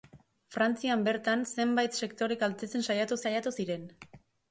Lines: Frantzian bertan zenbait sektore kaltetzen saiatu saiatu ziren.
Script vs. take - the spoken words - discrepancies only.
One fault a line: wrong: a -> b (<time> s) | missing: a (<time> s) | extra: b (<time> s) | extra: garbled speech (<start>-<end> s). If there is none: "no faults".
no faults